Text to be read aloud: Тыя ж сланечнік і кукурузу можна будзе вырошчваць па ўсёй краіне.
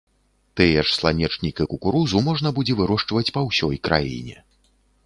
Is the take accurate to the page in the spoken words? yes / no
yes